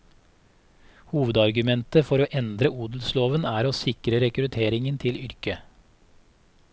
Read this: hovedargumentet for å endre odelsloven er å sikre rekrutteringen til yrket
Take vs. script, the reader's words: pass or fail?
pass